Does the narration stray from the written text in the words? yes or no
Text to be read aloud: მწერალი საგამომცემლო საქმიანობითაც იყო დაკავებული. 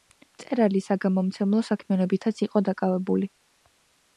no